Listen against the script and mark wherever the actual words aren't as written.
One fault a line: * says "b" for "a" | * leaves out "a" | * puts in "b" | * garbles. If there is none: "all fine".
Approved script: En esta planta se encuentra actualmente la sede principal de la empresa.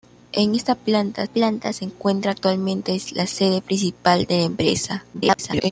* puts in "planta"
* garbles